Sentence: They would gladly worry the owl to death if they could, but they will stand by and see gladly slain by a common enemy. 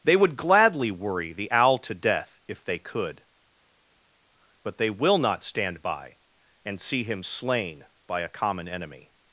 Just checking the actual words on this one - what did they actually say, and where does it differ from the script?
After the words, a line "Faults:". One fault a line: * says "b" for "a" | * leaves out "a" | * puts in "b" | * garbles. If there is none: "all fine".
They would gladly worry the owl to death if they could, but they will not stand by and see him slain by a common enemy.
Faults:
* puts in "not"
* says "him" for "gladly"